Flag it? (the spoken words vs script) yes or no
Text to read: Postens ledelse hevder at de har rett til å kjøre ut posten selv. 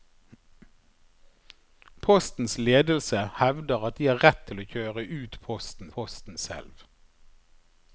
yes